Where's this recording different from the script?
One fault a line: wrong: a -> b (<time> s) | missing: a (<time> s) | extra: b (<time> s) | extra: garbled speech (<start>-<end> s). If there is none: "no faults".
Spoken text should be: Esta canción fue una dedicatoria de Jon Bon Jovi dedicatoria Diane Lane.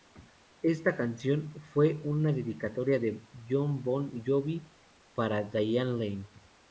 wrong: dedicatoria -> para (5.1 s)